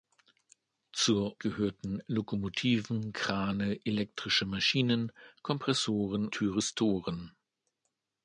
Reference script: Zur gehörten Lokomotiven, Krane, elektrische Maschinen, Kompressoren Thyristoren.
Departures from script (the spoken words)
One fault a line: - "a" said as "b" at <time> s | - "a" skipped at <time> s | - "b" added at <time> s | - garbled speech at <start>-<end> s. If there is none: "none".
none